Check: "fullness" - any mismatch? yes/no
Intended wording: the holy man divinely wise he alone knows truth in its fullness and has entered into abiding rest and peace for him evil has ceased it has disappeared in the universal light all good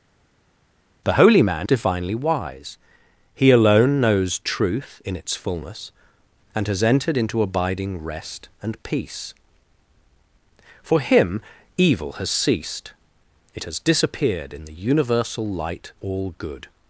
no